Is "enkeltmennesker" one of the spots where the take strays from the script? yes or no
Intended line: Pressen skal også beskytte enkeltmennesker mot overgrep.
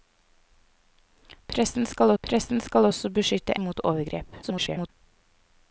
yes